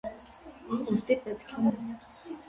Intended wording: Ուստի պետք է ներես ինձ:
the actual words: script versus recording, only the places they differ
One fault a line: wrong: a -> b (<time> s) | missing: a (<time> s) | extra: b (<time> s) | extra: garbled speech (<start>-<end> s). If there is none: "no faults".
missing: ներես (1.7 s)